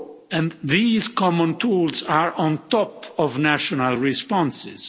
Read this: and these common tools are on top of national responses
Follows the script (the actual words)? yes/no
yes